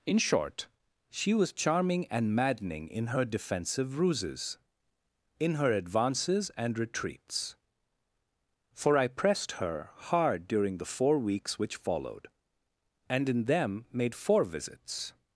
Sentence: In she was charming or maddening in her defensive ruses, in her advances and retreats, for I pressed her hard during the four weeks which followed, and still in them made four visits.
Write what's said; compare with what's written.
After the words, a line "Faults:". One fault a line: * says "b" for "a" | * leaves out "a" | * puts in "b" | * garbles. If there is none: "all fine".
In short, she was charming and maddening in her defensive ruses, in her advances and retreats, for I pressed her hard during the four weeks which followed, and in them made four visits.
Faults:
* puts in "short"
* says "and" for "or"
* leaves out "still"